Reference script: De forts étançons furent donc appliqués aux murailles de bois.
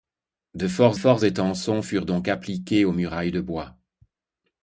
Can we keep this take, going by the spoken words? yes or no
no